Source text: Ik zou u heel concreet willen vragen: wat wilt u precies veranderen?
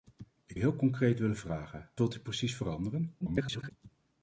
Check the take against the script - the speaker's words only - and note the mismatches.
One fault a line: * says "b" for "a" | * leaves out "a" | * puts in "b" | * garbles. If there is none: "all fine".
* leaves out "zou"
* leaves out "wat"
* garbles